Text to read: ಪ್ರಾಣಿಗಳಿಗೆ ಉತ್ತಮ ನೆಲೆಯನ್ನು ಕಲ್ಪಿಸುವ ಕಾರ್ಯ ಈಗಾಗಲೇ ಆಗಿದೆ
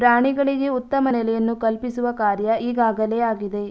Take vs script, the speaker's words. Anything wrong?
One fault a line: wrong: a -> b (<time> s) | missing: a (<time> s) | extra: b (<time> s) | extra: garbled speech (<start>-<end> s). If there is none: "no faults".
no faults